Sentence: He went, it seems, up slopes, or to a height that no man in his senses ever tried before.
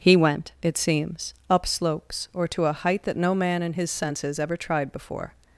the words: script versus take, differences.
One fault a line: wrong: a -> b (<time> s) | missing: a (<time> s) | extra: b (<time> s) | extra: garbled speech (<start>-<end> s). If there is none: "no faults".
no faults